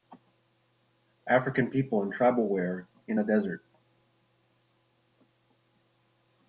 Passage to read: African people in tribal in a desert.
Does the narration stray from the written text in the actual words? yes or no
yes